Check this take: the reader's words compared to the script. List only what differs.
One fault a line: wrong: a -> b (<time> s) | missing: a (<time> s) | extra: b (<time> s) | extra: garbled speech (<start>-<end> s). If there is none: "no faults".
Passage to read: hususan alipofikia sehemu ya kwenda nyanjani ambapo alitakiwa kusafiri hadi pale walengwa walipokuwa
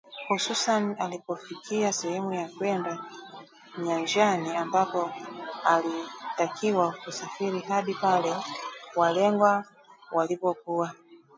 no faults